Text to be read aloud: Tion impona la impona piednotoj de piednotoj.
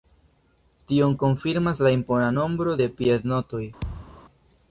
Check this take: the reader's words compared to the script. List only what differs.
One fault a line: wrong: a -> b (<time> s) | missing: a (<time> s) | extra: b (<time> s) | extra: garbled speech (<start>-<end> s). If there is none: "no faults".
wrong: impona -> konfirmas (1.2 s)
wrong: piednotoj -> nombro (2.4 s)